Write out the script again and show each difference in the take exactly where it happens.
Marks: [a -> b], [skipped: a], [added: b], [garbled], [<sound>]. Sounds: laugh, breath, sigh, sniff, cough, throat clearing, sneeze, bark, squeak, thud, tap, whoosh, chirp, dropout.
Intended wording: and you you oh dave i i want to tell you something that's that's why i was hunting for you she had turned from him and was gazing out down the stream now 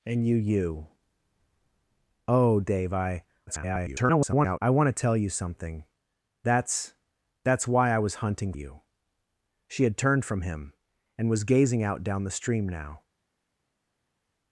and you you oh dave i [garbled] i want to tell you something that's that's why i was hunting [skipped: for] you she had turned from him and was gazing out down the stream now